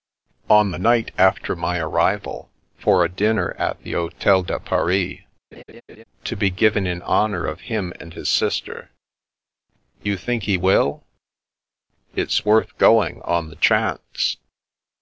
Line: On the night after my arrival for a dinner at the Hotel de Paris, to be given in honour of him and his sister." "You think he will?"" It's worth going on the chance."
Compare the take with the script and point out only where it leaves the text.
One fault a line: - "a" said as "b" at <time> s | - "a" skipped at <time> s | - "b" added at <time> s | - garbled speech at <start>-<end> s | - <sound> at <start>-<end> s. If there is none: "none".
- laugh at 5.5-6.0 s